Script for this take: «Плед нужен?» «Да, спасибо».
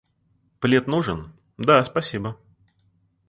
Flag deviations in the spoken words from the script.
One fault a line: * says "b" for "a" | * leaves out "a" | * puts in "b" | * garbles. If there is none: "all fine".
all fine